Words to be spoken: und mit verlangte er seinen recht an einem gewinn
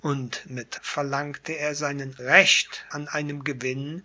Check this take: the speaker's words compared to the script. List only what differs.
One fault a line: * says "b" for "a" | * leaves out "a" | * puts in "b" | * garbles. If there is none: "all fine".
all fine